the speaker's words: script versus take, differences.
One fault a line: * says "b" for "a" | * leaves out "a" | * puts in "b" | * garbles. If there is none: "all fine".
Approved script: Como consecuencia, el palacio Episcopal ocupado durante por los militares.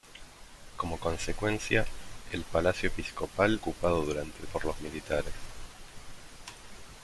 all fine